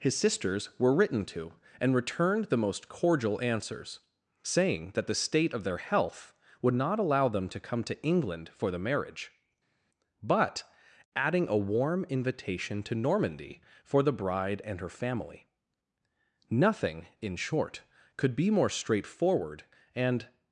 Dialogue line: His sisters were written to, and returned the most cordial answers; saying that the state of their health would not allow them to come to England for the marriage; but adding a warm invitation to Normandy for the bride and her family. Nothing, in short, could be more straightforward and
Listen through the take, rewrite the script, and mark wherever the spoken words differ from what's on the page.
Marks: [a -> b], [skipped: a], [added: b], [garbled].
His sisters were written to, and returned the most cordial answers; saying that the state of their health would not allow them to come to England for the marriage; but adding a warm invitation to Normandy for the bride and her family. Nothing, in short, could be more straightforward and